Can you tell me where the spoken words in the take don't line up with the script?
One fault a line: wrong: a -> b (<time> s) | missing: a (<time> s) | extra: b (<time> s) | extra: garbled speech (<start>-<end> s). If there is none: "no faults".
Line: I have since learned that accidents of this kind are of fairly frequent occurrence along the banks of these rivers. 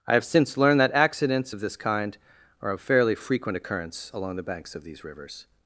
no faults